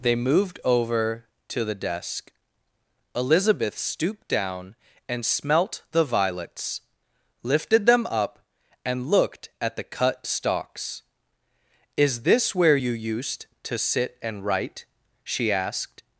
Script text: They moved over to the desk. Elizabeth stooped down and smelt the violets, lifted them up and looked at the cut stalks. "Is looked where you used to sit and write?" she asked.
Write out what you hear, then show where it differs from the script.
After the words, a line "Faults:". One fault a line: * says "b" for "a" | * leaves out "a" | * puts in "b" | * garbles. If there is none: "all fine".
They moved over to the desk. Elizabeth stooped down and smelt the violets, lifted them up and looked at the cut stalks. "Is this where you used to sit and write?" she asked.
Faults:
* says "this" for "looked"